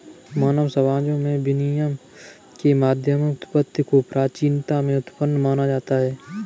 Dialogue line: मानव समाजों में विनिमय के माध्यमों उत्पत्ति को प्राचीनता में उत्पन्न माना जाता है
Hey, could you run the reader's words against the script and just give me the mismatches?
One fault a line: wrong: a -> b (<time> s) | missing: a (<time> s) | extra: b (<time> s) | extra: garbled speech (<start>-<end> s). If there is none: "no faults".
no faults